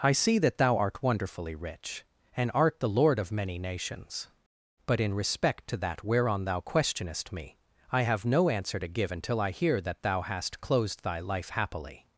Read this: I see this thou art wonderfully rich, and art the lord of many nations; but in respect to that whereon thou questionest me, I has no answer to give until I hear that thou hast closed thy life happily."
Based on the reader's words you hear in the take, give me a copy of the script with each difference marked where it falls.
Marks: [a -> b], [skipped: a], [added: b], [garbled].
I see [this -> that] thou art wonderfully rich, and art the lord of many nations; but in respect to that whereon thou questionest me, I [has -> have] no answer to give until I hear that thou hast closed thy life happily."